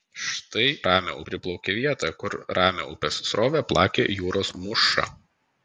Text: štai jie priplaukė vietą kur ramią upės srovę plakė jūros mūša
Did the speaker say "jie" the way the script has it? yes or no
no